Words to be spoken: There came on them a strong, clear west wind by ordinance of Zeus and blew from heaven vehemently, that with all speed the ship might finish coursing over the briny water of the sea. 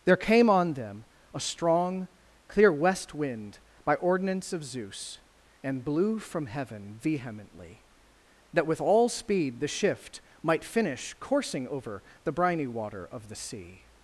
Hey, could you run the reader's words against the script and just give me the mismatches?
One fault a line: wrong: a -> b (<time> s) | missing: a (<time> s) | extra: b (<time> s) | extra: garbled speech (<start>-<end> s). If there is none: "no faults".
wrong: ship -> shift (9.7 s)